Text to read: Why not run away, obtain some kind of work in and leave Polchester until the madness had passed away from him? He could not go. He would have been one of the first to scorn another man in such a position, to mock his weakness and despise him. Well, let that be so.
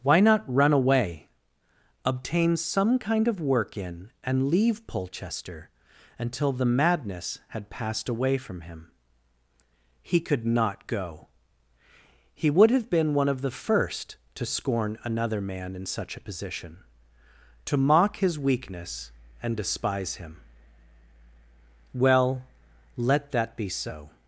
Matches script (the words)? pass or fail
pass